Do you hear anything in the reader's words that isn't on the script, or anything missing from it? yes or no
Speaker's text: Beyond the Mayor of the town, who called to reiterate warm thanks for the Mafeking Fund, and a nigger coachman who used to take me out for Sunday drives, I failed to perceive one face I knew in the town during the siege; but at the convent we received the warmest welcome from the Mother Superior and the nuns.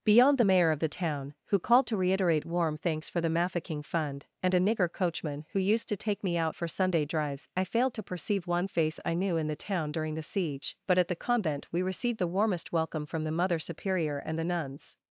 no